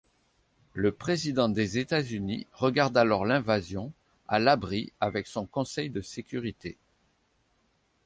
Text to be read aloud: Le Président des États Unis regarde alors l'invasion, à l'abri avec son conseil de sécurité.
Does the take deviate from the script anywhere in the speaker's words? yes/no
no